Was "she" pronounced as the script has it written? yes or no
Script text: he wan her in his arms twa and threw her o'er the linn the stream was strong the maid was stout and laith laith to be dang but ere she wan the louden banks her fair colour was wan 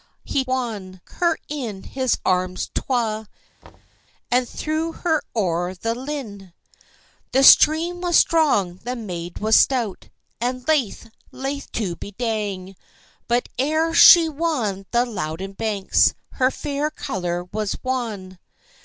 yes